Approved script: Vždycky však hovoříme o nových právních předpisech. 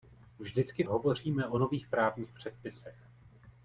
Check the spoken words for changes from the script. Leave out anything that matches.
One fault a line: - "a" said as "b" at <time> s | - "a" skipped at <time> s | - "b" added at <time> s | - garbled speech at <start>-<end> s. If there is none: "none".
- "však" skipped at 0.8 s